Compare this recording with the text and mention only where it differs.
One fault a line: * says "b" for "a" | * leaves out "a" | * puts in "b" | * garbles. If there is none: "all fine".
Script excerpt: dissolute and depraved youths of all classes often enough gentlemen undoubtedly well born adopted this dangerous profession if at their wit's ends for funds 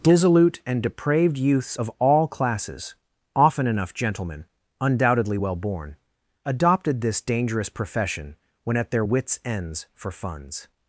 * says "when" for "if"